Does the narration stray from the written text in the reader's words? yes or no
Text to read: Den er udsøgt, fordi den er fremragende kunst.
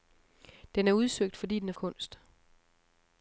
yes